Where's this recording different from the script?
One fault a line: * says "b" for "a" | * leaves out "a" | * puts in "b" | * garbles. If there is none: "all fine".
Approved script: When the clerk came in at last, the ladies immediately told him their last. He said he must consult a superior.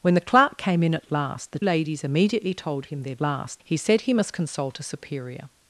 all fine